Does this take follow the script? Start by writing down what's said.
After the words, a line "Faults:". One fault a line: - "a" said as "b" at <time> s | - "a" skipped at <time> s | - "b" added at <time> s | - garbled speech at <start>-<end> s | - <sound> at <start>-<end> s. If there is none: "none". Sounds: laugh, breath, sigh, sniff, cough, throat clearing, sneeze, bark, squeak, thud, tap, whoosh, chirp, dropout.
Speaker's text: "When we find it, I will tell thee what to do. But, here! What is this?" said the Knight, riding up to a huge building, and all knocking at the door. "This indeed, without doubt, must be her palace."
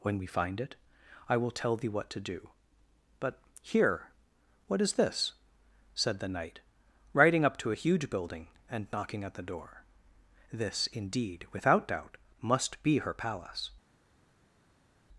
"When we find it, I will tell thee what to do. But, here! What is this?" said the Knight, riding up to a huge building, and knocking at the door. "This indeed, without doubt, must be her palace."
Faults:
- "all" skipped at 8.9 s